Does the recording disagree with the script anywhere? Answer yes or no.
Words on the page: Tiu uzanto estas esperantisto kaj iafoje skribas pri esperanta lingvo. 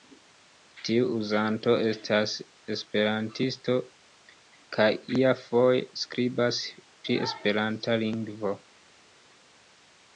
no